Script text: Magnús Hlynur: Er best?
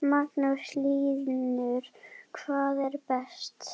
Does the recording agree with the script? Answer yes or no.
no